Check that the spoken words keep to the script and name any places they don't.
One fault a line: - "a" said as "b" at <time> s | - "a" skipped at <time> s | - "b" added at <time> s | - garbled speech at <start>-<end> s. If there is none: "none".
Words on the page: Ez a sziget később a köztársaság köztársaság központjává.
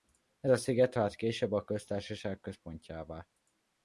- "vált" added at 0.9 s
- "köztársaság" skipped at 2.4 s